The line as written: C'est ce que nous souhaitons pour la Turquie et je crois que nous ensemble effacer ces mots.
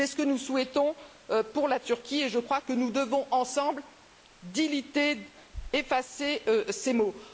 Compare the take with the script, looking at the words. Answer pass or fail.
fail